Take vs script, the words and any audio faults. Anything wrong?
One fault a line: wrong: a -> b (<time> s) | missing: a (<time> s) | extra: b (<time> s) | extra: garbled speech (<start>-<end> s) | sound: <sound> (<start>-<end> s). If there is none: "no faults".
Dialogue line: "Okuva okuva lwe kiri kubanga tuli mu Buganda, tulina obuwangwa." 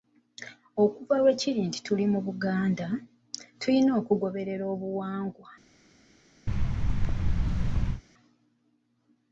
missing: okuva (1.1 s)
wrong: kubanga -> nti (1.7 s)
extra: okugoberera (4.0 s)
sound: thud (6.5-8.0 s)